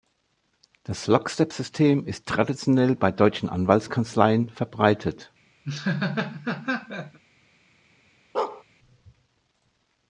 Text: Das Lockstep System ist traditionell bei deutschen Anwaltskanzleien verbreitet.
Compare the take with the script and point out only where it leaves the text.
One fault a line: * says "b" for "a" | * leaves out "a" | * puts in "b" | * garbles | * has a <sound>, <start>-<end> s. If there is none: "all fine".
* has a laugh, 5.6-7.2 s
* has a bark, 8.3-8.6 s